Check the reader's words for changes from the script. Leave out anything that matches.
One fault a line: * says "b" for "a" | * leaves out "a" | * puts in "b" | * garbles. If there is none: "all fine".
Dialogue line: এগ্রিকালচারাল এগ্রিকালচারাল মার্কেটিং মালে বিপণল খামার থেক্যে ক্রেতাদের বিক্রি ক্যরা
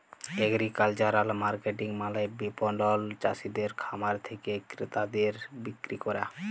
* leaves out "এগ্রিকালচারাল"
* puts in "চাসিদের"